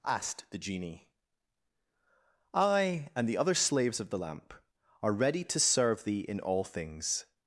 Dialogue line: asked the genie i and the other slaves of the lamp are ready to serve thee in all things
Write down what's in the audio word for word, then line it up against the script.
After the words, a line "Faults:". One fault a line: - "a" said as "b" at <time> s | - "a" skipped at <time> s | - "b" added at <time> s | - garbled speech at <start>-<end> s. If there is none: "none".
asked the genie i and the other slaves of the lamp are ready to serve thee in all things
Faults:
none